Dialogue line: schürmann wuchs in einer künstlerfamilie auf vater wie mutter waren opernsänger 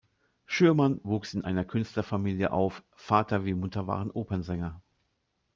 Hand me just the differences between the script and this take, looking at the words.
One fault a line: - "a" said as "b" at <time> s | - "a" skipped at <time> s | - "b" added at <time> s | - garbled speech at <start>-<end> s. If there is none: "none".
none